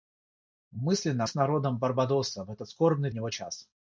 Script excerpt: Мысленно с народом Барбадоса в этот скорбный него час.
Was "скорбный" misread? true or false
false